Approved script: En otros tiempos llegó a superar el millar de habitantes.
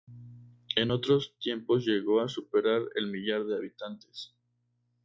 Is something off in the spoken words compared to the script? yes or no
no